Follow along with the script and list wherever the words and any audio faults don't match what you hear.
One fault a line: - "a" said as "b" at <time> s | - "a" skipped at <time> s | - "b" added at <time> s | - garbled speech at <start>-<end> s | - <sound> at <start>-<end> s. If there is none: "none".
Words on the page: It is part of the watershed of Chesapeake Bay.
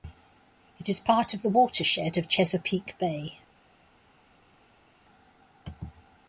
none